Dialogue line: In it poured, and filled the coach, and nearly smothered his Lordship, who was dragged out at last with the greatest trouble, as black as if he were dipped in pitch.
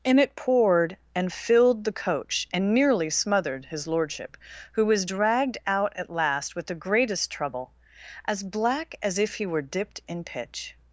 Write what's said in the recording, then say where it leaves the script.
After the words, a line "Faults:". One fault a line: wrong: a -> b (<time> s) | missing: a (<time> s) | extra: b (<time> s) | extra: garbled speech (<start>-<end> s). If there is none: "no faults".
In it poured, and filled the coach, and nearly smothered his Lordship, who was dragged out at last with the greatest trouble, as black as if he were dipped in pitch.
Faults:
no faults